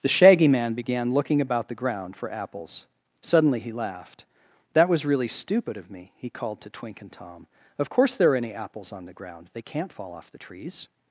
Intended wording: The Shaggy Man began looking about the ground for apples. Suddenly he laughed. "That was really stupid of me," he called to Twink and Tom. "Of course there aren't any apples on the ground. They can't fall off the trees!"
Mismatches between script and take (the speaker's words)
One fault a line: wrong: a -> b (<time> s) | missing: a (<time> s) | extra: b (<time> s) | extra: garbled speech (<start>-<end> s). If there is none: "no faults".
wrong: aren't -> are (8.3 s)